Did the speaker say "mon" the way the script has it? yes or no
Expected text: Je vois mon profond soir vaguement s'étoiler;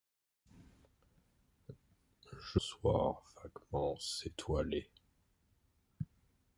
no